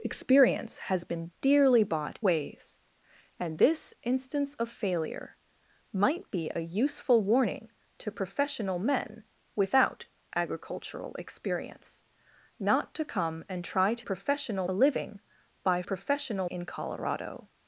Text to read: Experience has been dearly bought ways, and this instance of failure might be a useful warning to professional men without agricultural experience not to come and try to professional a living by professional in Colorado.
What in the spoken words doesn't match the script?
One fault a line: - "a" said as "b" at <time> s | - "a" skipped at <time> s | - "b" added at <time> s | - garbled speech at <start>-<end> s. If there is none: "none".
none